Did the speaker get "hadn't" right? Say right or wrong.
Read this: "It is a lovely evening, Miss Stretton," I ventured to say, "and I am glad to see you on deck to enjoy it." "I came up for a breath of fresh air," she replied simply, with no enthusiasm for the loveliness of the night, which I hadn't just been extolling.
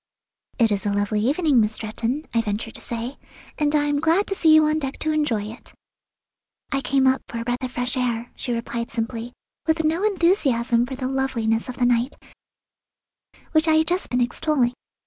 wrong